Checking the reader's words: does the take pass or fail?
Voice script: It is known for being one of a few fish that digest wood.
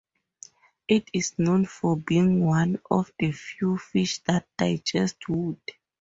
fail